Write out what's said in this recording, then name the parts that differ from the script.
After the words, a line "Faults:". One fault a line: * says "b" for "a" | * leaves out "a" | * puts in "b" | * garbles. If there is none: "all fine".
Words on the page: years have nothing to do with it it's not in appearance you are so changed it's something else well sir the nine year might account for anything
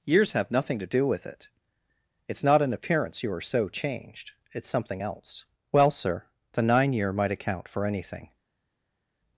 years have nothing to do with it it's not in appearance you are so changed it's something else well sir the nine year might account for anything
Faults:
all fine